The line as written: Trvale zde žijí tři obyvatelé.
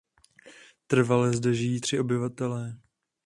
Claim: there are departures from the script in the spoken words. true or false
false